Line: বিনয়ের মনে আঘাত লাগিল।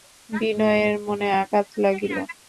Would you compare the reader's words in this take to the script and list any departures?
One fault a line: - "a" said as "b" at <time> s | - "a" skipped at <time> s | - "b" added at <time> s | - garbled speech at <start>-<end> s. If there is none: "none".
none